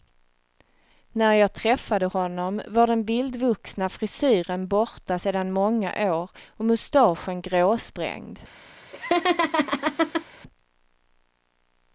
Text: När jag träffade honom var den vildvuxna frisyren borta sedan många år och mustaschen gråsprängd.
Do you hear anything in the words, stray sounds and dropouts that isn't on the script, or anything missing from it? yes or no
yes